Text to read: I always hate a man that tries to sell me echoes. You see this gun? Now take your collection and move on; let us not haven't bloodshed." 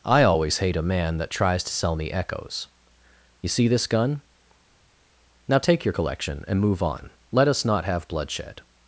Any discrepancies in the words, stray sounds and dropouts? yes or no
yes